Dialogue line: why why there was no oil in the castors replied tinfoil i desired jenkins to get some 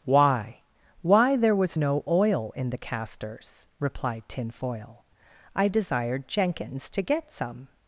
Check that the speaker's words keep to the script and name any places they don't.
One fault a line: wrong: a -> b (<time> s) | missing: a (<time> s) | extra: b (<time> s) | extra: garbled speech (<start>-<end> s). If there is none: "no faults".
no faults